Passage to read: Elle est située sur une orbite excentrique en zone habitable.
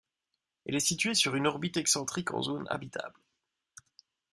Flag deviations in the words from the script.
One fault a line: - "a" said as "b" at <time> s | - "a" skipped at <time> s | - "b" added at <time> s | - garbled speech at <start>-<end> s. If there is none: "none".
none